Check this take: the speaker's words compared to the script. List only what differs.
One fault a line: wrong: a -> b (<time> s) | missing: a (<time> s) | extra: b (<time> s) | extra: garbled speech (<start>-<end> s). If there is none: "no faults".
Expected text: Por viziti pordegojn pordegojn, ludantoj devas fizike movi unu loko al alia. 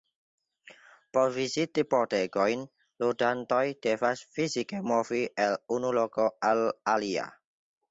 missing: pordegojn (2.6 s)
extra: el (5.5 s)